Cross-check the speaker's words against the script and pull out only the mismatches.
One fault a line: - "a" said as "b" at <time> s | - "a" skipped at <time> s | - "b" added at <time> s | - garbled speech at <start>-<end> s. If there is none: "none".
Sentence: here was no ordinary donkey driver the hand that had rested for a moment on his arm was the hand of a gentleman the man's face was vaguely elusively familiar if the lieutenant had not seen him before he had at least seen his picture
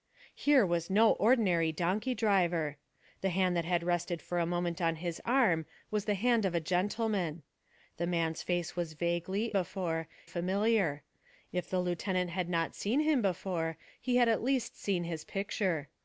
- "elusively" said as "before" at 9.5 s